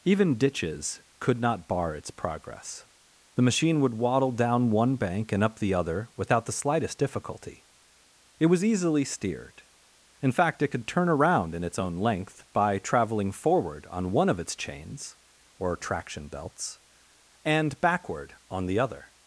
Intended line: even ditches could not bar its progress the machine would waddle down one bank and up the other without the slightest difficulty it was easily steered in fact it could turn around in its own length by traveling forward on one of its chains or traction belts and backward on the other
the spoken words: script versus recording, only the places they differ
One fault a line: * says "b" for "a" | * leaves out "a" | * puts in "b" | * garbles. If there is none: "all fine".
all fine